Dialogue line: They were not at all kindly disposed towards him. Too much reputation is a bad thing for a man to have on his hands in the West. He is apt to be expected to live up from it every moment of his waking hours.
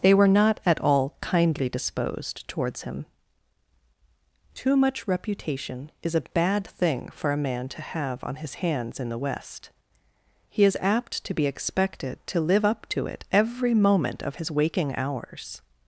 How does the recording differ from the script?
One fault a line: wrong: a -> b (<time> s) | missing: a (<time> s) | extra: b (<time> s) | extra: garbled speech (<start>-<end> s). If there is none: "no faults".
wrong: from -> to (12.9 s)